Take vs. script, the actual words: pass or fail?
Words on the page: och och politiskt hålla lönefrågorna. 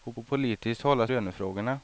pass